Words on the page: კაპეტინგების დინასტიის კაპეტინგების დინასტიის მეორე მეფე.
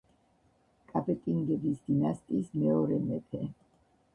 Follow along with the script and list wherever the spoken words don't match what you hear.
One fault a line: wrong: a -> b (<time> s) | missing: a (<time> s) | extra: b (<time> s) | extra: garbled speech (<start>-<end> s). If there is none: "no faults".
missing: კაპეტინგების დინასტიის (2.6 s)